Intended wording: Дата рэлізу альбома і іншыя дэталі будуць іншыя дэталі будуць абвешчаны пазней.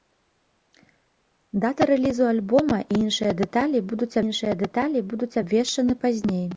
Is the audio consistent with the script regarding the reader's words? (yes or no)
yes